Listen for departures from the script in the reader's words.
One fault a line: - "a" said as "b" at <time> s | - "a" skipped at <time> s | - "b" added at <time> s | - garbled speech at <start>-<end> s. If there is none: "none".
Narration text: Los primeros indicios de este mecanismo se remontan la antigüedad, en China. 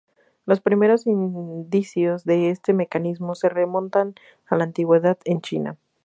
- "a" added at 4.4 s